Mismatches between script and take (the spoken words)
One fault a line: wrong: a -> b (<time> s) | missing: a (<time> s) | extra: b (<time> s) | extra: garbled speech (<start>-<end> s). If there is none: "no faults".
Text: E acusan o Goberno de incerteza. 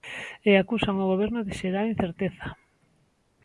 extra: xerar (1.6 s)